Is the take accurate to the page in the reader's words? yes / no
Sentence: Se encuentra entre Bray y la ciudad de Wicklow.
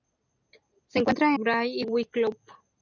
no